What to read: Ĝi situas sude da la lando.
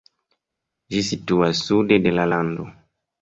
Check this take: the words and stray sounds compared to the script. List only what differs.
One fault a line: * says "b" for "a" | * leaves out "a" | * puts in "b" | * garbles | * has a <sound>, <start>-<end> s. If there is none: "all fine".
* says "de" for "da"